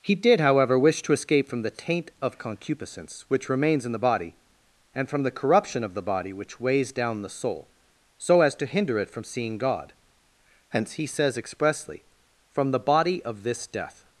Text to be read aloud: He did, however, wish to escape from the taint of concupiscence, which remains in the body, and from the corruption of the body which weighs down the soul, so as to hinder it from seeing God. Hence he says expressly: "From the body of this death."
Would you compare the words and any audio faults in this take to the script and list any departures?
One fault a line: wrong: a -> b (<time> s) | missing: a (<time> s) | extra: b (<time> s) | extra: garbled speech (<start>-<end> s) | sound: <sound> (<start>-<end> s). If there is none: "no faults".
no faults